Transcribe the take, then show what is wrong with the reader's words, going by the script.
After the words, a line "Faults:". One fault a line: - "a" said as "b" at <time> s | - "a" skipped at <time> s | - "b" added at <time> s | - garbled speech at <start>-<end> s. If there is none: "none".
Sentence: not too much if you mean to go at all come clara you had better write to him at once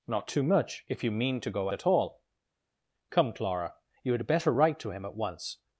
not too much if you mean to go at all come clara you had better write to him at once
Faults:
none